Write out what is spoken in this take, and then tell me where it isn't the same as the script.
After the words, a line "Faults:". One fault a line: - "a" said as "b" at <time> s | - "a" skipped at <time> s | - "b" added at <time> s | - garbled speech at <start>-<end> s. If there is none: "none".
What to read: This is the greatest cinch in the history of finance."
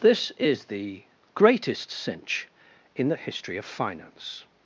This is the greatest cinch in the history of finance."
Faults:
none